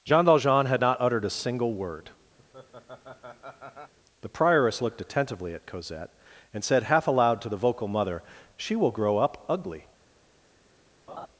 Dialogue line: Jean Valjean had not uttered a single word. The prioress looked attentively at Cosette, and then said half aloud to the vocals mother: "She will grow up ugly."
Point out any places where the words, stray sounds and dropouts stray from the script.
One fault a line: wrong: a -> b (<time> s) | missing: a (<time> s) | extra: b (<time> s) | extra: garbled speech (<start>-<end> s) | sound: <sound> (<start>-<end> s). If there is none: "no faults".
sound: laugh (2.4-3.9 s)
missing: then (6.6 s)
wrong: vocals -> vocal (7.6 s)
sound: laugh (11.1-11.3 s)